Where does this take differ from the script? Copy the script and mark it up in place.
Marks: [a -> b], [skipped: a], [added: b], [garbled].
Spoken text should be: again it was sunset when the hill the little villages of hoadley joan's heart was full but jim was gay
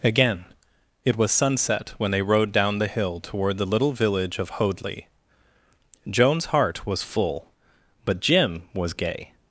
again it was sunset when [added: they rode down] the hill [added: toward] the little [villages -> village] of hoadley joan's heart was full but jim was gay